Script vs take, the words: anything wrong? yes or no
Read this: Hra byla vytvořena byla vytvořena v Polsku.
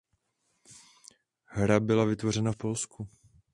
yes